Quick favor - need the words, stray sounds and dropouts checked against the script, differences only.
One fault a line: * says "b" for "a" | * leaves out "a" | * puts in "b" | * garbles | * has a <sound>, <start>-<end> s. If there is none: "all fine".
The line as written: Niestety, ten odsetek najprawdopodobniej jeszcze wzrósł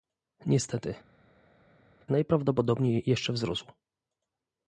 * leaves out "ten odsetek"